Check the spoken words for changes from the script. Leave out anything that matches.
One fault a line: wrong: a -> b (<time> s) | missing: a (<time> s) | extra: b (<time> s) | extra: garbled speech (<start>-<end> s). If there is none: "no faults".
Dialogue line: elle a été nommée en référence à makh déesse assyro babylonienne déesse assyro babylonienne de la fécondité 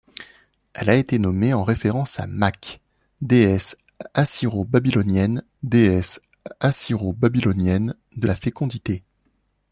no faults